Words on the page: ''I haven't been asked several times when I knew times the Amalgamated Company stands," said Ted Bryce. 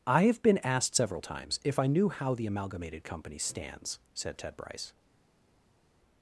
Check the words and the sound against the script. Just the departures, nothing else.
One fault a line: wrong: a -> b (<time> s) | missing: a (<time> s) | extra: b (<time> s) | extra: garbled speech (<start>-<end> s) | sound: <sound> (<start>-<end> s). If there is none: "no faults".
wrong: haven't -> have (0.2 s)
wrong: when -> if (1.6 s)
wrong: times -> how (2.1 s)